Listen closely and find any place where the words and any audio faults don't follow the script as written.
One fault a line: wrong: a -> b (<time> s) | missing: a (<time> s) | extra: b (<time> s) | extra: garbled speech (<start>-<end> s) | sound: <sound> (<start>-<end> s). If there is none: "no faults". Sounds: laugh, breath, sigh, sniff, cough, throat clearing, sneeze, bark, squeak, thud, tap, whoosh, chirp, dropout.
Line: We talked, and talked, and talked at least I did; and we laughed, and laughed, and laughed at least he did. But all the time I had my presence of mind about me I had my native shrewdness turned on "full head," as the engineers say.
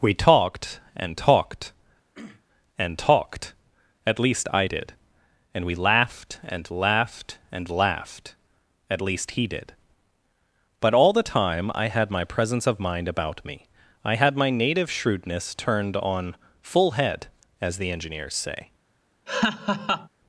sound: throat clearing (2.1-2.4 s)
sound: laugh (19.3-20.1 s)